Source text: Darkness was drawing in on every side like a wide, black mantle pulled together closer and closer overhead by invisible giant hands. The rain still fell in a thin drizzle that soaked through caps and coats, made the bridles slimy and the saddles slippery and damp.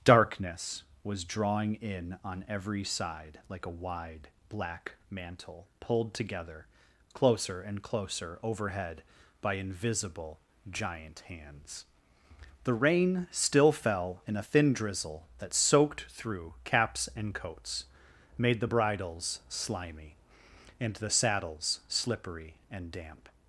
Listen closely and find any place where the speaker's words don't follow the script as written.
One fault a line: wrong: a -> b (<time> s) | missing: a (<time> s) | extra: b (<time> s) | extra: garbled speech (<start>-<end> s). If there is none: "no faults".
no faults